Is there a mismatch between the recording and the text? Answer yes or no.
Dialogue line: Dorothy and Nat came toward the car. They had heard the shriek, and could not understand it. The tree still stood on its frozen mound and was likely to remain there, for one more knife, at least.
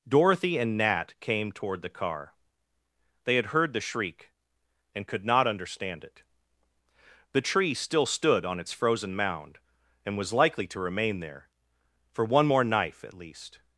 no